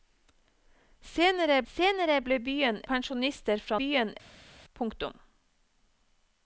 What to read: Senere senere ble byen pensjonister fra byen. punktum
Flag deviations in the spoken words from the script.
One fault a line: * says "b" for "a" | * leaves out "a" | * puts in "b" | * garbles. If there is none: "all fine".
all fine